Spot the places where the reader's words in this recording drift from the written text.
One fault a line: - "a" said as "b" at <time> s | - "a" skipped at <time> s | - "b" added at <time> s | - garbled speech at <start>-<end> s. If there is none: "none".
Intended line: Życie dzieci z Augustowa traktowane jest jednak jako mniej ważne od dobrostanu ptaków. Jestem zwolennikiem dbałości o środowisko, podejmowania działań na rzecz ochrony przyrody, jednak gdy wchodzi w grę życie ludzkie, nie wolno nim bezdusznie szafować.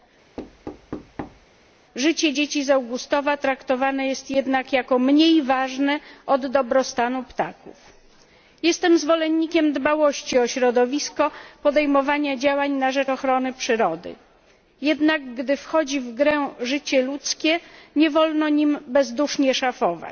none